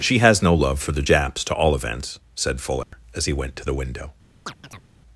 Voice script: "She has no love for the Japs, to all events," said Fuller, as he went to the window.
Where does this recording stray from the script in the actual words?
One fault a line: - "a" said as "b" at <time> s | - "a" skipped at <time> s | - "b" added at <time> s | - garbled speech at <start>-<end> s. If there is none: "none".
none